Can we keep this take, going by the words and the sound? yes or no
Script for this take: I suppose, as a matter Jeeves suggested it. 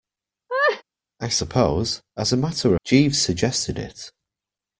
no